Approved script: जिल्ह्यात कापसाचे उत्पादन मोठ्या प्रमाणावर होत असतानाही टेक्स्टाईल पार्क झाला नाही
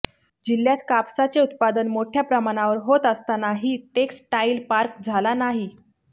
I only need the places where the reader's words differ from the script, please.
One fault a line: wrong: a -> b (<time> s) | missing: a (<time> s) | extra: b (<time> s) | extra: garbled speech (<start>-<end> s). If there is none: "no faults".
no faults